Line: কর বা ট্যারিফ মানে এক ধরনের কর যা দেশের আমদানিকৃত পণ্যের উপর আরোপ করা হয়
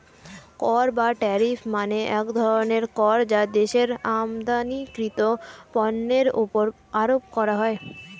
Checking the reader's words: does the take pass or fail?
pass